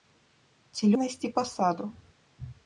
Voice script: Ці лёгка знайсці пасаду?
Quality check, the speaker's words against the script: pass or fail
fail